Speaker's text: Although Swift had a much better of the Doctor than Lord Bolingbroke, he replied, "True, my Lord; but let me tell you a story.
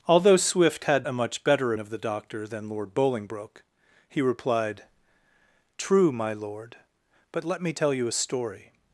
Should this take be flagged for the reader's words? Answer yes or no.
no